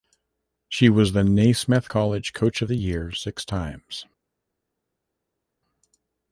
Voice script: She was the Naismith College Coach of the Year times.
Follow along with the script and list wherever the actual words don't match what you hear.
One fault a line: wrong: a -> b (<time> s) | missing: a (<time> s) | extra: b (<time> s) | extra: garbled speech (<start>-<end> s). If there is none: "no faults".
extra: six (3.1 s)